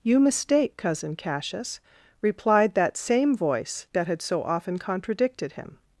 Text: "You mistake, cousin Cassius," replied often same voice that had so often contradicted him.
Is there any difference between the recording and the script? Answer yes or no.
yes